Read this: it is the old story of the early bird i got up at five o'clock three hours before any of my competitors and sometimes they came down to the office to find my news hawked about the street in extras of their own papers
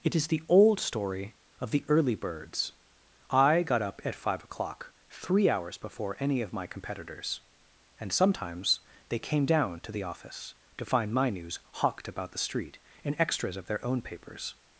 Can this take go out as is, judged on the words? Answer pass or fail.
fail